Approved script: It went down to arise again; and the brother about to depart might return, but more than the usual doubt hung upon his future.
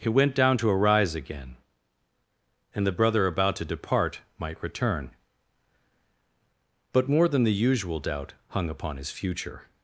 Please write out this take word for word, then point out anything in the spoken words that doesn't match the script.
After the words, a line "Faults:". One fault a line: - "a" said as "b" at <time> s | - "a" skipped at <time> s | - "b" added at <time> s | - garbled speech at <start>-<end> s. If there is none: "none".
He went down to arise again; and the brother about to depart might return, but more than the usual doubt hung upon his future.
Faults:
- "It" said as "He" at 0.0 s